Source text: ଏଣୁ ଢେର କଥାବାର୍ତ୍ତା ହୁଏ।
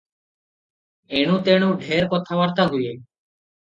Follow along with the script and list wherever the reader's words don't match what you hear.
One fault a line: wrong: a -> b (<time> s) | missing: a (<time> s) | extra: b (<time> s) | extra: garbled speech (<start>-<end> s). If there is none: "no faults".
extra: ତେଣୁ (1.4 s)